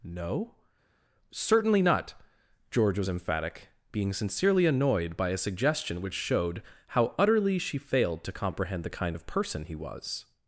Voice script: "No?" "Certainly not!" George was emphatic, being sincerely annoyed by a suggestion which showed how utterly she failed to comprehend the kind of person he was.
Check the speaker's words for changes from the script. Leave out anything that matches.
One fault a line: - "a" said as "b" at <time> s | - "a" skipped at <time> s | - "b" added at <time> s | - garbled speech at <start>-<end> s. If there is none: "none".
none